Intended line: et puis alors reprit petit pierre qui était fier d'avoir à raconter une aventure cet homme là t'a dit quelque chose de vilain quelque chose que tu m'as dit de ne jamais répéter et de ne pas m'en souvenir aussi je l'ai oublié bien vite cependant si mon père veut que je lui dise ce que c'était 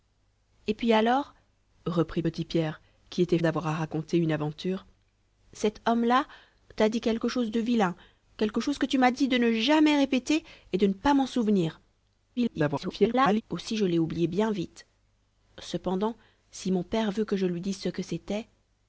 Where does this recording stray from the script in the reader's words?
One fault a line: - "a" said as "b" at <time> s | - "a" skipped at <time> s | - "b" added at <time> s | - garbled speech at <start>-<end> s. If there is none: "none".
- "fier" skipped at 3.4 s
- garbled speech at 12.4-13.4 s